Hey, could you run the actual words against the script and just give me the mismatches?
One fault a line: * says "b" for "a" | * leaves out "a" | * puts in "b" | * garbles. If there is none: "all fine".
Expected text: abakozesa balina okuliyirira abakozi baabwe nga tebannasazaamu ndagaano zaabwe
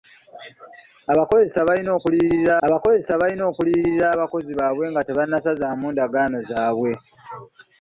* puts in "abakozesa balina okuliyirira"